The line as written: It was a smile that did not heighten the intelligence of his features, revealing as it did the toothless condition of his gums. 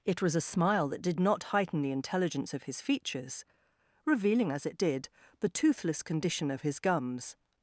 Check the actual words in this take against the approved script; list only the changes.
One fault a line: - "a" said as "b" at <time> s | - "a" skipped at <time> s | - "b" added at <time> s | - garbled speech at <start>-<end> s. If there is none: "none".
none